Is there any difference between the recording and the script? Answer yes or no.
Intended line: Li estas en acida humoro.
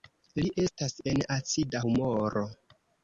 no